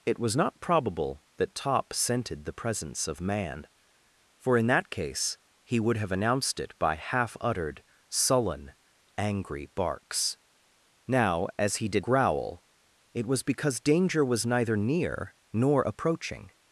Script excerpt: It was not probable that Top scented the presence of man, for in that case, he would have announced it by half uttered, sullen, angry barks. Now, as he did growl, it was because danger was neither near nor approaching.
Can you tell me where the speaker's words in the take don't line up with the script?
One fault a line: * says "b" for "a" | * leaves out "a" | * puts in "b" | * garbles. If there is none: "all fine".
all fine